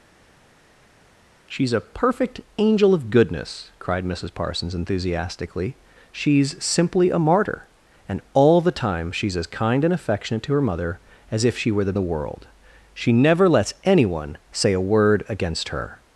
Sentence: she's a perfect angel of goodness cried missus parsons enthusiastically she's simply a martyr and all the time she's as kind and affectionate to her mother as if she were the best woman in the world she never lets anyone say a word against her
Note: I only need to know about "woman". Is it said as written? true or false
false